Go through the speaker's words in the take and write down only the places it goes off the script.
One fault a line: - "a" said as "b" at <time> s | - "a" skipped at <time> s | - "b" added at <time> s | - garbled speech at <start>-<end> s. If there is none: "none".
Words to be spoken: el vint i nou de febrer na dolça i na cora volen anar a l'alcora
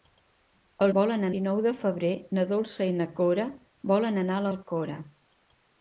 - "vint" said as "volen" at 1.0 s